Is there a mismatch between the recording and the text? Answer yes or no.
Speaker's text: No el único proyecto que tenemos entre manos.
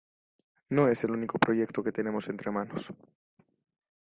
yes